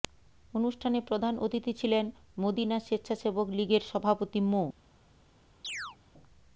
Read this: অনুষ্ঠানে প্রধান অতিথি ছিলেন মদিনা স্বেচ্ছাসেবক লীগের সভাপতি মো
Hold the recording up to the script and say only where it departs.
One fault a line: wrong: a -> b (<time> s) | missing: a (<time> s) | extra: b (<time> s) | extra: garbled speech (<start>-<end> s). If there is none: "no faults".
no faults